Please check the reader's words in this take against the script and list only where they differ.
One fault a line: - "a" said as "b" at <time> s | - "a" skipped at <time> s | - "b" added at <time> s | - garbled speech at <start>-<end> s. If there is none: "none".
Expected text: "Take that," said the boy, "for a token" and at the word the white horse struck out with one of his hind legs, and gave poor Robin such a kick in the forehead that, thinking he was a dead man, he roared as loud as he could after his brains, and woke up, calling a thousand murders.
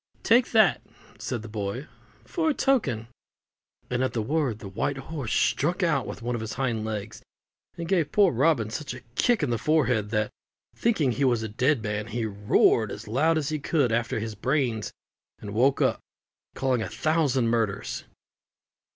none